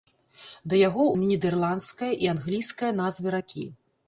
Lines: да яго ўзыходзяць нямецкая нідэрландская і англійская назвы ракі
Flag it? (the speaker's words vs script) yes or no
yes